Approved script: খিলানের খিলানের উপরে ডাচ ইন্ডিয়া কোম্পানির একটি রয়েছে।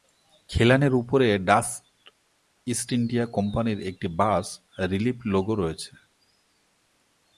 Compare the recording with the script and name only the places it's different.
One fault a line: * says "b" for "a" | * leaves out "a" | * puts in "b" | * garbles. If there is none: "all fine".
* leaves out "খিলানের"
* puts in "ইস্ট"
* puts in "বাস রিলিফ লোগো"